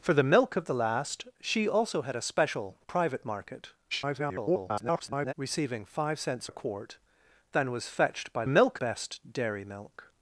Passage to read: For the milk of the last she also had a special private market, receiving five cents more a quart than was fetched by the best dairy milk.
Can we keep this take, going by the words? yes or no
no